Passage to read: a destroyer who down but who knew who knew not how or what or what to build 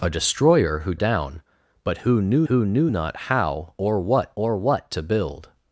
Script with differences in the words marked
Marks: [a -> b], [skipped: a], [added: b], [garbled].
a destroyer who down but who knew who knew not how or what or what to build